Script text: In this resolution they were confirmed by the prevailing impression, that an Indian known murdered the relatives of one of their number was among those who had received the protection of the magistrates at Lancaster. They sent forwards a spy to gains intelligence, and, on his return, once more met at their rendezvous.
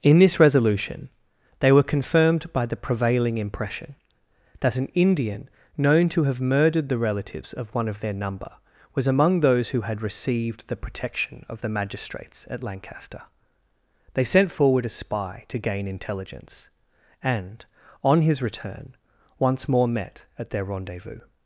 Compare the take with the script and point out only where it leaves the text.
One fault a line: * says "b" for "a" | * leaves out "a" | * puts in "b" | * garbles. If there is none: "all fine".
* puts in "to have"
* says "forward" for "forwards"
* says "gain" for "gains"